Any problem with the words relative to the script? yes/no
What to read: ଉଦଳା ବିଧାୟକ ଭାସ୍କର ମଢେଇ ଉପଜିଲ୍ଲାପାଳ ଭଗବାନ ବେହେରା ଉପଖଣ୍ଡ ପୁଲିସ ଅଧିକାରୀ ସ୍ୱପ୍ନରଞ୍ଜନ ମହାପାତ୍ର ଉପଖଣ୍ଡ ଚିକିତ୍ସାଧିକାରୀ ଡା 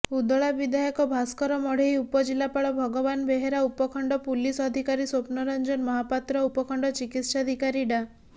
no